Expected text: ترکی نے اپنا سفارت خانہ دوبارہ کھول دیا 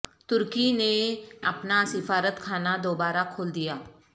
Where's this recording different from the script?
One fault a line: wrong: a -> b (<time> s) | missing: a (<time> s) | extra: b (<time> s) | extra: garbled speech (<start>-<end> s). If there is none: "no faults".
no faults